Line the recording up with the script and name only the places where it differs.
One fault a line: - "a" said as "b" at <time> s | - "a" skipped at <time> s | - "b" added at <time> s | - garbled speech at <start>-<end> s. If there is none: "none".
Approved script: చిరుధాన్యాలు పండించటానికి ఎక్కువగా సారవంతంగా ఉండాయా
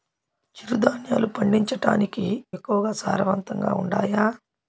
none